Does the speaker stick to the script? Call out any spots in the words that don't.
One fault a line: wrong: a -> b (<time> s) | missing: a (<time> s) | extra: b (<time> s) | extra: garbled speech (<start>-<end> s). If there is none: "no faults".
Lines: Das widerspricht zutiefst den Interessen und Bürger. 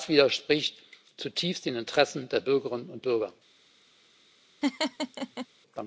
extra: der Bürgerinnen (2.3 s)